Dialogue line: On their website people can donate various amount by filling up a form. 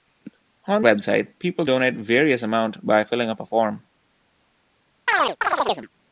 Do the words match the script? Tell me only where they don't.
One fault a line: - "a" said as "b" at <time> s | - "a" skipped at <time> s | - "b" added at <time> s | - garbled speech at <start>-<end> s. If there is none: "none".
- "their" skipped at 0.8 s
- "can" skipped at 1.6 s